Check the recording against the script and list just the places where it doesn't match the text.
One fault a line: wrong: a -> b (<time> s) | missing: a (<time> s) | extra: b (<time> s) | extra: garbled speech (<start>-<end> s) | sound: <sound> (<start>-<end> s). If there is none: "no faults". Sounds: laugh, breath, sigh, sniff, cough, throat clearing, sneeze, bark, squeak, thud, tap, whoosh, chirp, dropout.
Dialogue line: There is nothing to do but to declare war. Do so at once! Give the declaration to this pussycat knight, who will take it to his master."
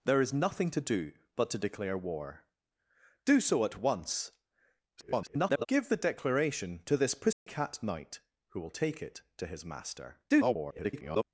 extra: garbled speech (5.0-5.7 s)
sound: dropout (7.3-7.5 s)
extra: garbled speech (10.3-11.2 s)